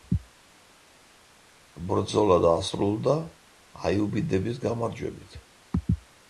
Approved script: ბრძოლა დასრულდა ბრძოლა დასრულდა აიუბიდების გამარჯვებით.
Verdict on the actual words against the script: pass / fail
fail